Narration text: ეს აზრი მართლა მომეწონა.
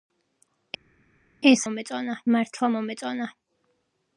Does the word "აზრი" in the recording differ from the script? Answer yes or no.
yes